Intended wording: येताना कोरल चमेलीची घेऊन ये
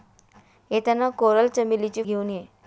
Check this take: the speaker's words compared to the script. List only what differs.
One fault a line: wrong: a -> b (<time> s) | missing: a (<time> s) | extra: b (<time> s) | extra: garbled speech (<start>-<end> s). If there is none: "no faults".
no faults